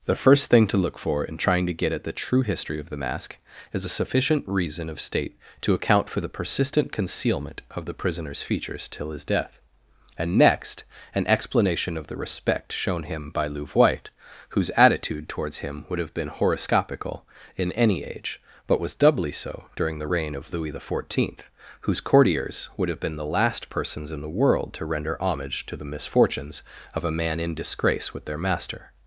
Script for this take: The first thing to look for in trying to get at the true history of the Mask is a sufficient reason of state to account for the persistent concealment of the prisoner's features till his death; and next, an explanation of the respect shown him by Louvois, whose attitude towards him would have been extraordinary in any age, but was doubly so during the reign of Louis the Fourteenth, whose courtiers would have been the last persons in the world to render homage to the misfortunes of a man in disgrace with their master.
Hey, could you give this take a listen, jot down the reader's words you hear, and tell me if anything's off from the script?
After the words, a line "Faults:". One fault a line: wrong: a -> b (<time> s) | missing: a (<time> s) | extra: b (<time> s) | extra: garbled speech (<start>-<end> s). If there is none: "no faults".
The first thing to look for in trying to get at the true history of the Mask is a sufficient reason of state to account for the persistent concealment of the prisoner's features till his death; and next, an explanation of the respect shown him by Louvois, whose attitude towards him would have been horoscopical in any age, but was doubly so during the reign of Louis the Fourteenth, whose courtiers would have been the last persons in the world to render homage to the misfortunes of a man in disgrace with their master.
Faults:
wrong: extraordinary -> horoscopical (16.3 s)